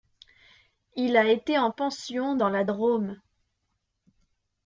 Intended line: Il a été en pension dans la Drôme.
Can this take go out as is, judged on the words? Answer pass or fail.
pass